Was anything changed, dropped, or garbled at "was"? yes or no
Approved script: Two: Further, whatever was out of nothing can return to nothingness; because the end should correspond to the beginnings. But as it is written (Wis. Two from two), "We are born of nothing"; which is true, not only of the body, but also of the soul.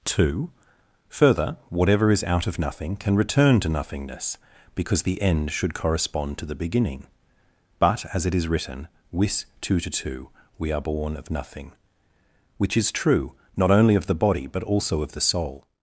yes